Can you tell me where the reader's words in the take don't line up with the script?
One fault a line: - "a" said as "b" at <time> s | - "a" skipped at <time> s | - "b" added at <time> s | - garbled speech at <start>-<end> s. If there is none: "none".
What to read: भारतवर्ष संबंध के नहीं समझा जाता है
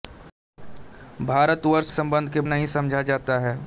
none